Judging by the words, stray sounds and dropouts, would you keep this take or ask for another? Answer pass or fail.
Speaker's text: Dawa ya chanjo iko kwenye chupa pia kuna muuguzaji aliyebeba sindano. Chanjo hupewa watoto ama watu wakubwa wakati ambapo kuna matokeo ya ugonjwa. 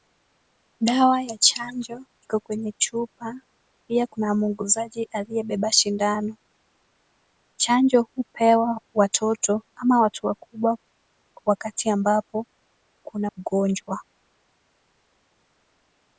fail